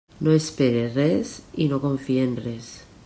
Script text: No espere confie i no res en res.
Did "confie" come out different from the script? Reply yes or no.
yes